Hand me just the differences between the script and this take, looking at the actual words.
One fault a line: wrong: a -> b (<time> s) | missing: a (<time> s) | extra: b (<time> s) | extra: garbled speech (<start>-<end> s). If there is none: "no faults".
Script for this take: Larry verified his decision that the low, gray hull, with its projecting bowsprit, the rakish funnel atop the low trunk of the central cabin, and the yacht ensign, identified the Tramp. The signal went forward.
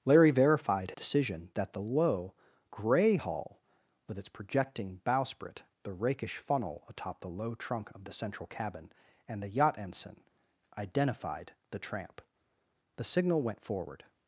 missing: his (0.9 s)